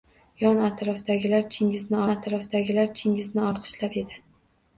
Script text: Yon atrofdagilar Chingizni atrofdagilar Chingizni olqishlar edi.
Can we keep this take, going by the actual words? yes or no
yes